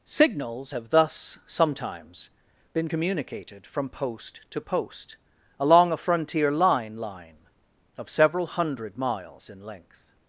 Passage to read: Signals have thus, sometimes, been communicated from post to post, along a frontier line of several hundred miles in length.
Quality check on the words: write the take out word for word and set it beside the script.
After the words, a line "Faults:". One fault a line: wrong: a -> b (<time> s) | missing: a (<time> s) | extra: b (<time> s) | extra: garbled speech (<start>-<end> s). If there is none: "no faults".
Signals have thus, sometimes, been communicated from post to post, along a frontier line line of several hundred miles in length.
Faults:
extra: line (7.0 s)